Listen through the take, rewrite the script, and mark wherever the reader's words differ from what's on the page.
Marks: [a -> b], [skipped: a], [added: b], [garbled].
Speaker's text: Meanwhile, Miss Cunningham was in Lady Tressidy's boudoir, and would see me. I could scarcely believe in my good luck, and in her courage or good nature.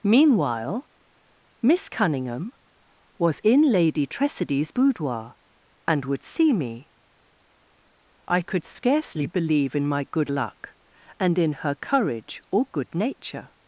Meanwhile, Miss Cunningham was in Lady Tressidy's boudoir, and would see me. I could scarcely believe in my good luck, and in her courage or good nature.